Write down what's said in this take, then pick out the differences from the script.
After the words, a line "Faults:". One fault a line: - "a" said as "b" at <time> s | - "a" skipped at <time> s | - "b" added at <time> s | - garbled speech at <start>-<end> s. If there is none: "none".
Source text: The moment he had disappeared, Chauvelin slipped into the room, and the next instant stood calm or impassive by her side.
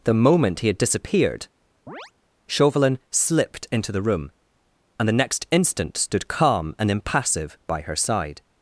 The moment he had disappeared, Chauvelin slipped into the room, and the next instant stood calm and impassive by her side.
Faults:
- "or" said as "and" at 6.8 s